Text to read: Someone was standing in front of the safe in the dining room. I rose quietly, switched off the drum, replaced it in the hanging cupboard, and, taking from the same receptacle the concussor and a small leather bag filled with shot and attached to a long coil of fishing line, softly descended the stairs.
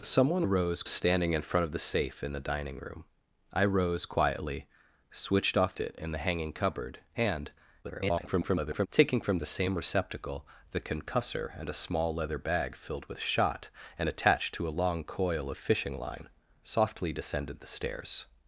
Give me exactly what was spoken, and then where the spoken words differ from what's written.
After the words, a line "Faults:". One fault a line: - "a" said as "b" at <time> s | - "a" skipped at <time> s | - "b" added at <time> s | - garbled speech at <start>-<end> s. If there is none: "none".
Someone rose standing in front of the safe in the dining room. I rose quietly, switched off it in the hanging cupboard, and, [garbled] taking from the same receptacle the concussor and a small leather bag filled with shot and attached to a long coil of fishing line, softly descended the stairs.
Faults:
- "was" said as "rose" at 0.4 s
- "the drum replaced" skipped at 5.7 s
- garbled speech at 7.8-8.9 s